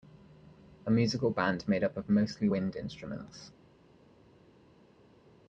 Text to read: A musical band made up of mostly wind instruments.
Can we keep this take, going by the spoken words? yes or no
yes